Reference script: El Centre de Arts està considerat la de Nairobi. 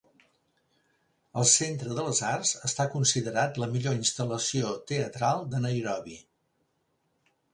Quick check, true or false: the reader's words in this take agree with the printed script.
false